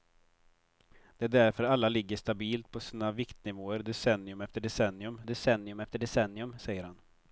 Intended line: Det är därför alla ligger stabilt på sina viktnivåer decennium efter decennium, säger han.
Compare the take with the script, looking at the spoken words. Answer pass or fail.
fail